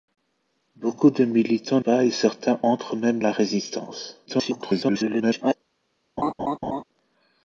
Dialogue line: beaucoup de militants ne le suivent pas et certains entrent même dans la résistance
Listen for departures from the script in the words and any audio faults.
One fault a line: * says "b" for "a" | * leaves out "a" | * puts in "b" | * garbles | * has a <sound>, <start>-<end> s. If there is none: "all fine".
* leaves out "ne le suivent"
* leaves out "dans"
* garbles
* has a laugh, 6.2-6.8 s